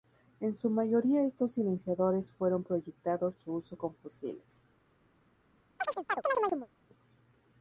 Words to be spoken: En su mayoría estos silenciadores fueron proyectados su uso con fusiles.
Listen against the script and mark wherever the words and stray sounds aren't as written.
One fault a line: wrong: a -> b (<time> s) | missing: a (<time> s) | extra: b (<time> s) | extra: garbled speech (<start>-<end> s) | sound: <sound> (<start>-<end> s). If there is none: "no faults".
sound: chirp (5.8-6.7 s)